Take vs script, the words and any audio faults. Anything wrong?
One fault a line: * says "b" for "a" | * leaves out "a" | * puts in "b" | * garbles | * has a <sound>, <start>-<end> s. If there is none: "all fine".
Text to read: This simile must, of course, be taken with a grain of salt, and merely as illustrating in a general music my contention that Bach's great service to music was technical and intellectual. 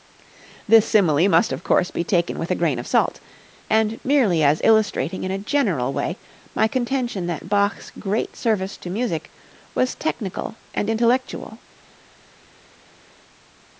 * says "way" for "music"